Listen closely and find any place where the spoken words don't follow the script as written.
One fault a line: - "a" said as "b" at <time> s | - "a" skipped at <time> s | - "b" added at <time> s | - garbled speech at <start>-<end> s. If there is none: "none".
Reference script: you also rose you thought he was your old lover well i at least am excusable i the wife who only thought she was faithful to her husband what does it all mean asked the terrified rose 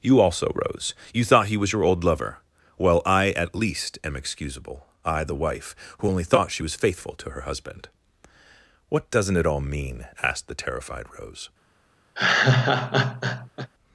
- "does" said as "doesn't" at 9.1 s